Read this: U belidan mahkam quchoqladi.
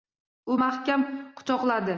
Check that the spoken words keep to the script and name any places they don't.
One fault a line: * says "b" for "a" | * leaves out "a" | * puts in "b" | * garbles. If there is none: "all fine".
* leaves out "belidan"